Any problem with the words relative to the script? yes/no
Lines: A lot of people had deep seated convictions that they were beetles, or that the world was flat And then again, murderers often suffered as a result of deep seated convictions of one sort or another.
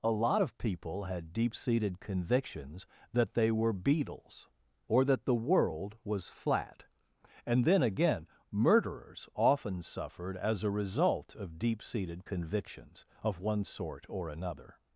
no